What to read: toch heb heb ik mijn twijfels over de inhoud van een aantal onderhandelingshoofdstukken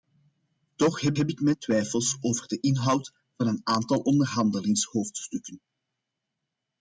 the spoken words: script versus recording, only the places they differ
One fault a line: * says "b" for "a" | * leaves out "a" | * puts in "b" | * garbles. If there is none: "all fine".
all fine